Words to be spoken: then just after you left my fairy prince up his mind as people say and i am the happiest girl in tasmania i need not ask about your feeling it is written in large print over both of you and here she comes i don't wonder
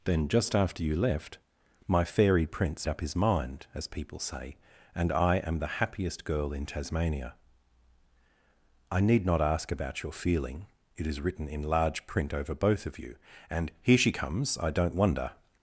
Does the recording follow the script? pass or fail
pass